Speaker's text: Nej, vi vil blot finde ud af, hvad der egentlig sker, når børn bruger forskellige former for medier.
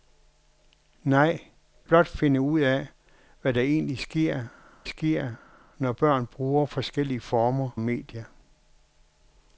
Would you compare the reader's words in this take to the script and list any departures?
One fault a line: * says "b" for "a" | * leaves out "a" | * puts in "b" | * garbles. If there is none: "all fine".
* leaves out "vi vil"
* puts in "sker"
* leaves out "for"